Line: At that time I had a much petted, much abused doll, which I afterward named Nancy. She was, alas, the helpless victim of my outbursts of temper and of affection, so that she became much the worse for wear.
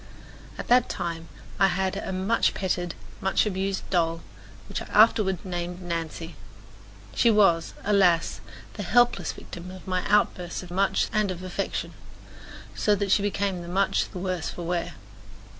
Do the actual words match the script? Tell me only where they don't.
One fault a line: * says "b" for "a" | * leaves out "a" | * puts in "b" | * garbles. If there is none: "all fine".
* says "much" for "temper"